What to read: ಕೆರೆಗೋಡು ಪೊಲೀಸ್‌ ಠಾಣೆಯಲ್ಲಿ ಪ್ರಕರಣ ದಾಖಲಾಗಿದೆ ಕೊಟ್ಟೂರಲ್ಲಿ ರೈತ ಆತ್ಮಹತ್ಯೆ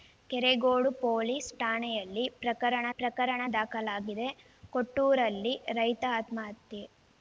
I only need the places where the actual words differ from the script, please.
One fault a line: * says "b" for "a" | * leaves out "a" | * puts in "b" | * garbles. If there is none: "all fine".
* puts in "ಪ್ರಕರಣ"